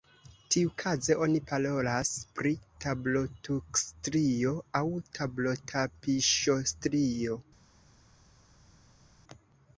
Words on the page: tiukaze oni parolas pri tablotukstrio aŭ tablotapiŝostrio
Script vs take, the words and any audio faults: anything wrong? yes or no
no